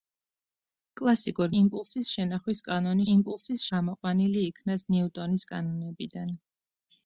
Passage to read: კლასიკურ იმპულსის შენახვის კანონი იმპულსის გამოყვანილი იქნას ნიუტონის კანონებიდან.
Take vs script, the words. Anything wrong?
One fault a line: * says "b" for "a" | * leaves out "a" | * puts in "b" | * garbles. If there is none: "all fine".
all fine